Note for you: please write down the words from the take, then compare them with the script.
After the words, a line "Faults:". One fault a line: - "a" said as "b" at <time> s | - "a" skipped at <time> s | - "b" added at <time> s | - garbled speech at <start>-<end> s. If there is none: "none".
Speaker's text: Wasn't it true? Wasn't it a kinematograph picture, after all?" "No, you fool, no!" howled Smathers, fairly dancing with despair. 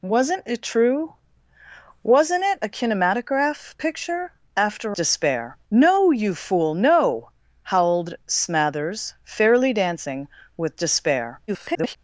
Wasn't it true? Wasn't it a kinematograph picture, after despair?" "No, you fool, no!" howled Smathers, fairly dancing with despair. [garbled]
Faults:
- "all" said as "despair" at 4.9 s
- garbled speech at 11.5-12.0 s